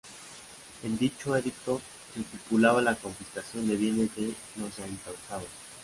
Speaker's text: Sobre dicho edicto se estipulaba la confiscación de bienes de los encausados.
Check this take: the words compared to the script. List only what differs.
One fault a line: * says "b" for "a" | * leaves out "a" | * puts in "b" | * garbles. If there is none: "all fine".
* says "En" for "Sobre"